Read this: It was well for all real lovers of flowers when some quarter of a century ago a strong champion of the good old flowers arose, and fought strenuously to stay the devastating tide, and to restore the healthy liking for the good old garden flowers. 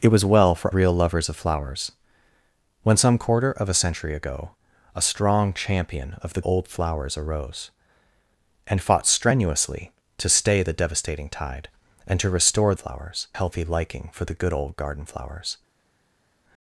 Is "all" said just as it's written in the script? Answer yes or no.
no